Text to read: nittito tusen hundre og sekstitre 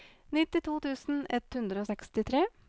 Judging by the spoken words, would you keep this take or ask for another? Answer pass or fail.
fail